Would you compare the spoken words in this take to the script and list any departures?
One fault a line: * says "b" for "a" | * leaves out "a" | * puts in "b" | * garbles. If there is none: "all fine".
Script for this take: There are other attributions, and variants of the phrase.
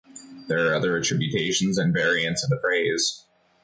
all fine